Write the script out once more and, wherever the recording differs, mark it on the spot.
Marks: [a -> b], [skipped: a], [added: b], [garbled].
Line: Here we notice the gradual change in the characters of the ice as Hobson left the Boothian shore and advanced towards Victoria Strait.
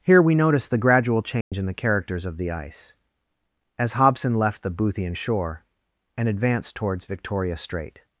Here we notice the gradual change in the characters of the ice as Hobson left the Boothian shore and advanced towards Victoria Strait.